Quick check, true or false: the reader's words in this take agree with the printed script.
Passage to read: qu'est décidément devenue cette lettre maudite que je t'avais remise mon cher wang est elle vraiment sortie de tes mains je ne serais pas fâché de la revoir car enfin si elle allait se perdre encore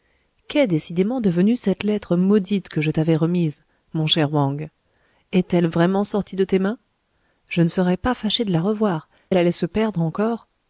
false